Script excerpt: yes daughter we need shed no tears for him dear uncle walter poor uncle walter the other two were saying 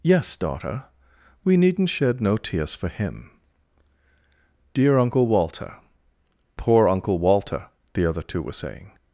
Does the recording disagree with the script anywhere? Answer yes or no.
yes